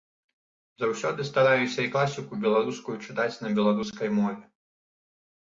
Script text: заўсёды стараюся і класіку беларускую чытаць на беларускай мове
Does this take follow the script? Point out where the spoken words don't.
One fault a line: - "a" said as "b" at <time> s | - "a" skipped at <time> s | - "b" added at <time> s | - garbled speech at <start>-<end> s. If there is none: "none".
none